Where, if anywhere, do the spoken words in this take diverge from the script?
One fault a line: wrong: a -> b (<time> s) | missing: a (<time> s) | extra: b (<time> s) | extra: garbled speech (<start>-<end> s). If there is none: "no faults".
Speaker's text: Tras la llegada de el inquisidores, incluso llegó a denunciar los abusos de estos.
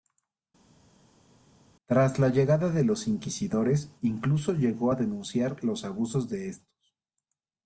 wrong: el -> los (2.8 s)